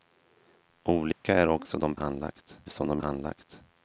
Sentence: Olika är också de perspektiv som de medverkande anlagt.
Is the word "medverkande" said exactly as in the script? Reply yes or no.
no